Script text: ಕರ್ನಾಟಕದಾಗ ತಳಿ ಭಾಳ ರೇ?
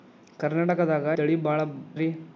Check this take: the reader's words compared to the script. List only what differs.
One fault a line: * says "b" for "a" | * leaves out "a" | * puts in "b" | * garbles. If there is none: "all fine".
all fine